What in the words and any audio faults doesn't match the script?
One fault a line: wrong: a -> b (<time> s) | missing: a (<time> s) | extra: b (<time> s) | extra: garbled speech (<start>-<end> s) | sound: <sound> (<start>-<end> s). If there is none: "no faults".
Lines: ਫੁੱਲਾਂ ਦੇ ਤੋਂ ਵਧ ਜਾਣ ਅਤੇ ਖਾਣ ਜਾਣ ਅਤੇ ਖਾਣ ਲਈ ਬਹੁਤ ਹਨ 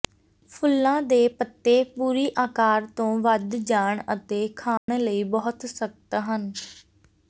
wrong: ਤੋਂ ਵਧ ਜਾਣ ਅਤੇ ਖਾਣ -> ਪੱਤੇ ਪੂਰੀ ਆਕਾਰ ਤੋਂ ਵਧ (1.3 s)
sound: dropout (4.8-4.9 s)
extra: ਸਖ਼ਤ (5.7 s)